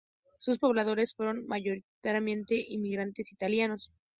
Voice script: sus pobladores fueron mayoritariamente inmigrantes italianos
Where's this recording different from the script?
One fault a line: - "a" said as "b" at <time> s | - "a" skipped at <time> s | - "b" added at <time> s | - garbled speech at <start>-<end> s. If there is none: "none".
none